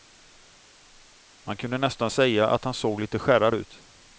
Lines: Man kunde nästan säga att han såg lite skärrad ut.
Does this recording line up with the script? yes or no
yes